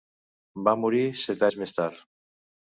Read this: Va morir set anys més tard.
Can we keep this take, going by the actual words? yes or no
yes